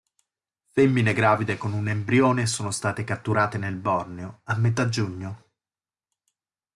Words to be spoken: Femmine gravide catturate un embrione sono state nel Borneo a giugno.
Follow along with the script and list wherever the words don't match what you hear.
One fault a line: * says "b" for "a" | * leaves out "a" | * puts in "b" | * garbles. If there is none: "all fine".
* says "con" for "catturate"
* puts in "catturate"
* puts in "metà"